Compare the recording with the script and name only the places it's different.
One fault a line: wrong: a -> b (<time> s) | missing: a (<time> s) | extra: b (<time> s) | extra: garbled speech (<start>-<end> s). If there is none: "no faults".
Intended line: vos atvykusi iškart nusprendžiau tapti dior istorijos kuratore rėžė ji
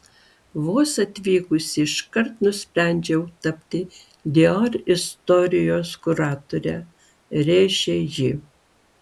no faults